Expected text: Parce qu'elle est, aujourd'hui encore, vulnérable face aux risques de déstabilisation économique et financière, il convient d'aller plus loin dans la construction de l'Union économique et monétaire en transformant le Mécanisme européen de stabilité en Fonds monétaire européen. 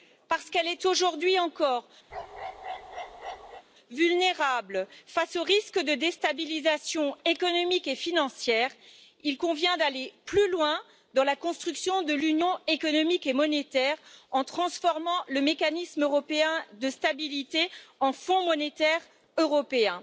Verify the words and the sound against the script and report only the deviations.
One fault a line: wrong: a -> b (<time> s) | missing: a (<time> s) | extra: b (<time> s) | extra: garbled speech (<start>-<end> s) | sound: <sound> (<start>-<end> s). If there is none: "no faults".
sound: bark (2.1-3.6 s)